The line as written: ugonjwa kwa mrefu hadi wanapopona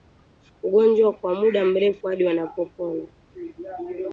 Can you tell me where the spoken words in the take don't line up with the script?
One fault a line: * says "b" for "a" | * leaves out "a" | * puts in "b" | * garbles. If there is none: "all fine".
* puts in "muda"